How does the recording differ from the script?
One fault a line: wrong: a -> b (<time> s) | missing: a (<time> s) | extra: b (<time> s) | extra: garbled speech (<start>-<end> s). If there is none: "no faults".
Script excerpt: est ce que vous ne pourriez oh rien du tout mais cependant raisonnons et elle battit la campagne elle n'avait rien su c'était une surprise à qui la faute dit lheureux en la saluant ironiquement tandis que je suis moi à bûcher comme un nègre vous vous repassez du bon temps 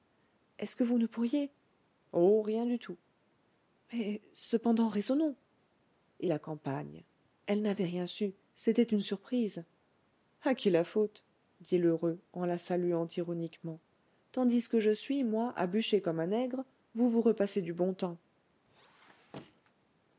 missing: elle battit (6.3 s)